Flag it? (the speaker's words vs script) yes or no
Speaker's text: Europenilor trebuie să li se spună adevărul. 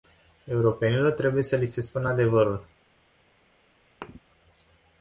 no